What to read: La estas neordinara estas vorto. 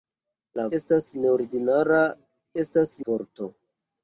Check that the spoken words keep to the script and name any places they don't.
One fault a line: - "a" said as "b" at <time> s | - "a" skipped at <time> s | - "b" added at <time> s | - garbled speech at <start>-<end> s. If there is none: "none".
none